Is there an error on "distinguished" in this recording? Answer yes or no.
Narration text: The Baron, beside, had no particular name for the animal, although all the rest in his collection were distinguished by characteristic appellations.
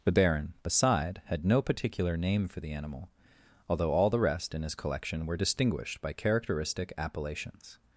no